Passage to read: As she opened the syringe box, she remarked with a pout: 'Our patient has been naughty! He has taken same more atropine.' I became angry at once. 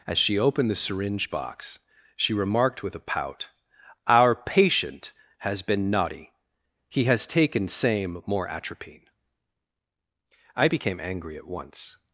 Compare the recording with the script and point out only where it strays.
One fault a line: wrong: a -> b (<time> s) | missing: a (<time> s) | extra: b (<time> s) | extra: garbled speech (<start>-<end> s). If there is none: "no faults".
no faults